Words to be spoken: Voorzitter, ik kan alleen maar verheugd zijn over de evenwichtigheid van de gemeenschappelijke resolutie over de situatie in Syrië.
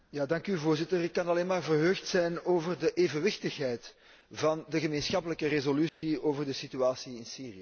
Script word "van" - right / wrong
right